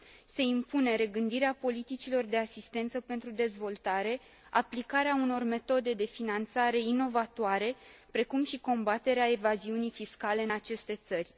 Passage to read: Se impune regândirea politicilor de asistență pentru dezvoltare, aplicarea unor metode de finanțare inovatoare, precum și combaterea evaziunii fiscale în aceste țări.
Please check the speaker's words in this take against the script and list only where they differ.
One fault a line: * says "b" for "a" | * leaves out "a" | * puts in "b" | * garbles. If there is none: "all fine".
all fine